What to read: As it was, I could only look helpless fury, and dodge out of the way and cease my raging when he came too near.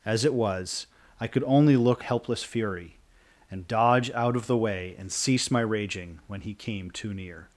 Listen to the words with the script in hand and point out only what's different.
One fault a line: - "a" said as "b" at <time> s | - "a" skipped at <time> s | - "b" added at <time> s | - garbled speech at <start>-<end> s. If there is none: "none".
none